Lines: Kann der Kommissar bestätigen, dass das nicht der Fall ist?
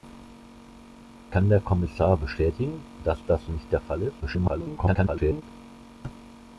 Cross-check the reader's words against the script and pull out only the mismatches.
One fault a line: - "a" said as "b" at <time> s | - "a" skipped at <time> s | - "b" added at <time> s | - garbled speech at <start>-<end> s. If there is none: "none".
- garbled speech at 4.2-5.4 s